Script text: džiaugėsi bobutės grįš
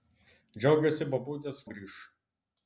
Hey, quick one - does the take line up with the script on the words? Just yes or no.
yes